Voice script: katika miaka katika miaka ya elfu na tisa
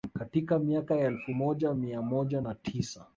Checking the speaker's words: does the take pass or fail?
fail